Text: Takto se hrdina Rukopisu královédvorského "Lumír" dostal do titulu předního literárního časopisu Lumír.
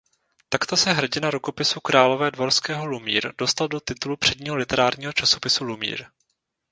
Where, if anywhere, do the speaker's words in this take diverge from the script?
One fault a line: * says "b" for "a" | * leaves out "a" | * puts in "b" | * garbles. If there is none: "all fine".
all fine